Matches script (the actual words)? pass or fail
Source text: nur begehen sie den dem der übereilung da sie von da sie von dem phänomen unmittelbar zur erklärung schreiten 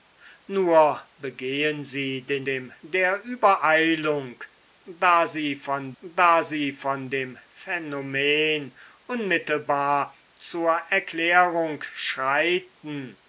pass